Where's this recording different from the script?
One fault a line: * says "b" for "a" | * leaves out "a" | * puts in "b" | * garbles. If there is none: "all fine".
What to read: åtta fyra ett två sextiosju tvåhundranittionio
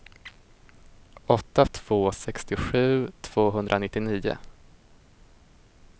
* leaves out "fyra ett"